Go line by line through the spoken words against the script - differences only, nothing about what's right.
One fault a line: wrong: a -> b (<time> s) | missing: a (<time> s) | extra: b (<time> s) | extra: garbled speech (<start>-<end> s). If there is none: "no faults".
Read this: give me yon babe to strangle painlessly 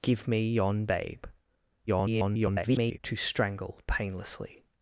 extra: garbled speech (1.9-3.0 s)